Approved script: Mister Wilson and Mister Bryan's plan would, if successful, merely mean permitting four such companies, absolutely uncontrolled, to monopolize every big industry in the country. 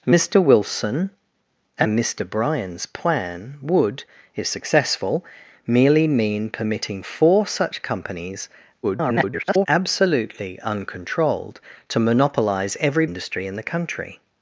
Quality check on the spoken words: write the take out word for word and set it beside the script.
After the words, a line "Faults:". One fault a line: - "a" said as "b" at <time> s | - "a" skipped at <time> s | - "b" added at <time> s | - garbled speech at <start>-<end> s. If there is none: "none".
Mister Wilson and Mister Bryan's plan would, if successful, merely mean permitting four such companies, [garbled] absolutely uncontrolled, to monopolize every industry in the country.
Faults:
- garbled speech at 8.8-9.7 s
- "big" skipped at 13.1 s